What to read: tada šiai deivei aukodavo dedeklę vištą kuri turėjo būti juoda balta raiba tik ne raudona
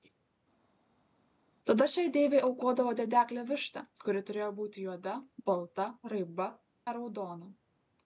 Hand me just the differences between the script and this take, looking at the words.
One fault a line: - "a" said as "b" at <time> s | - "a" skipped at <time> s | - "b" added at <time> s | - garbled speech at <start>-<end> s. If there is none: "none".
- "tik" skipped at 6.5 s